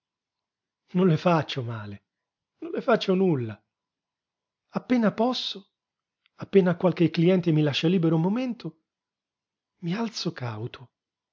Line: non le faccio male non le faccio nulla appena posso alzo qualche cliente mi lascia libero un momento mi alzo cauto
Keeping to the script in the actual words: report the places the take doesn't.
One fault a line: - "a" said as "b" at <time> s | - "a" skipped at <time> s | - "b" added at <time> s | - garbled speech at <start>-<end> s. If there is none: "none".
- "alzo" said as "appena" at 6.3 s